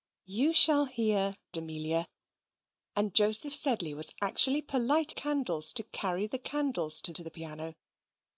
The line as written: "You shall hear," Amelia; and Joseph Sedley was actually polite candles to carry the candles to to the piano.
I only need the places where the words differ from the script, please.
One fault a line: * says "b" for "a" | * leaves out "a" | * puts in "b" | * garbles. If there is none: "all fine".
all fine